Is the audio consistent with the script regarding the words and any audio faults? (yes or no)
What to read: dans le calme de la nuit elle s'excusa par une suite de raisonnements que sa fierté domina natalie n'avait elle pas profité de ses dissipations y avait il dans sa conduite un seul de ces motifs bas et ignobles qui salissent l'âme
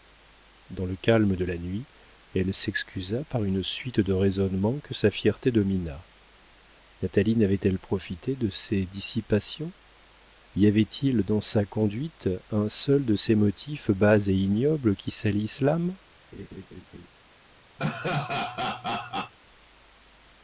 no